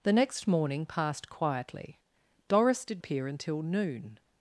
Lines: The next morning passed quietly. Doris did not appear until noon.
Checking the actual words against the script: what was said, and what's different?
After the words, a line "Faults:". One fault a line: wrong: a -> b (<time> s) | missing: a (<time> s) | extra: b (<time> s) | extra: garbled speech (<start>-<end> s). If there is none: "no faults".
The next morning passed quietly. Doris did appear until noon.
Faults:
missing: not (3.0 s)